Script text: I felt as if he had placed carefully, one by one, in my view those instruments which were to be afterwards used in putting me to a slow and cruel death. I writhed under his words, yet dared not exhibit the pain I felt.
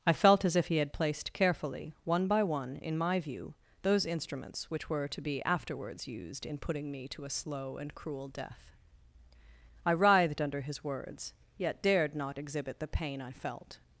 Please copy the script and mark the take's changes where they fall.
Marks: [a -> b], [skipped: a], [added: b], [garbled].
I felt as if he had placed carefully, one by one, in my view those instruments which were to be afterwards used in putting me to a slow and cruel death. I writhed under his words, yet dared not exhibit the pain I felt.